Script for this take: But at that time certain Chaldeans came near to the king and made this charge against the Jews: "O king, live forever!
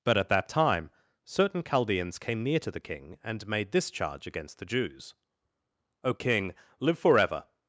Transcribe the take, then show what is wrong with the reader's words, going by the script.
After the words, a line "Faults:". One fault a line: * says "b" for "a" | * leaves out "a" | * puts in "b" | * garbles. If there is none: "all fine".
But at that time certain Chaldeans came near to the king and made this charge against the Jews: "O king, live forever!
Faults:
all fine